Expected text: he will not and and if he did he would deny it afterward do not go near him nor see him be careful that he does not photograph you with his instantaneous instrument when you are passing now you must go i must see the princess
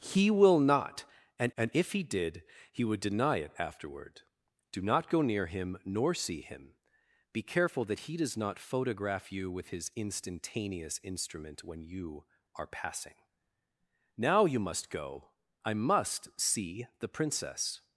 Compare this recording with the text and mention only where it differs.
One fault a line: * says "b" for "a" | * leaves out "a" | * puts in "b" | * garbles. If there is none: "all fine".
all fine